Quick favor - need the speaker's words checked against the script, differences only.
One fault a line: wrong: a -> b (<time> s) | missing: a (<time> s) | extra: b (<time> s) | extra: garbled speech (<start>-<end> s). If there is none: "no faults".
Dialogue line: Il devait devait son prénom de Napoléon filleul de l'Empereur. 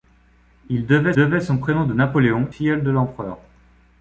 no faults